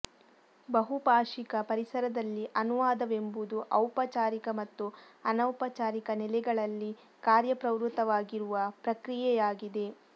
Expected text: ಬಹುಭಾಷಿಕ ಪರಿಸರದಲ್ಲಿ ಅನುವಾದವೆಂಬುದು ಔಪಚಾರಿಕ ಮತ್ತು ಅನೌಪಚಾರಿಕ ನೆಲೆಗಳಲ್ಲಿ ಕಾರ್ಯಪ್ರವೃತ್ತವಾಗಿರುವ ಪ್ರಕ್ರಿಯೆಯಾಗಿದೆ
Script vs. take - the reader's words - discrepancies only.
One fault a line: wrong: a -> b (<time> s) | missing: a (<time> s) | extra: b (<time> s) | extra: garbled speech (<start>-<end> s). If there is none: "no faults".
no faults